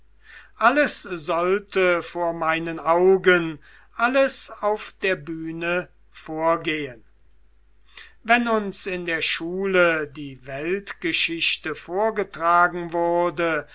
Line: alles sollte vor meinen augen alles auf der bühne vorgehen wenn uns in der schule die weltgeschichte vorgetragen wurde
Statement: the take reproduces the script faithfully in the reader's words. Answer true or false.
true